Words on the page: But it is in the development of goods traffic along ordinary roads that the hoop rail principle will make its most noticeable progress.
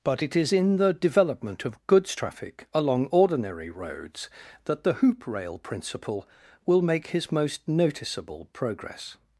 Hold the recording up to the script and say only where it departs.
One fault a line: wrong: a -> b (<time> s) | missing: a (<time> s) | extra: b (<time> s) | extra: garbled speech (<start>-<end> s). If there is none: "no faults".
wrong: its -> his (7.1 s)